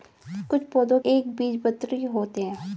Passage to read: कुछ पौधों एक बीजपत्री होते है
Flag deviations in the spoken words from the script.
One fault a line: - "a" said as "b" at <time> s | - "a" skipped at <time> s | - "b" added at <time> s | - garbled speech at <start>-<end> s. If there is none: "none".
none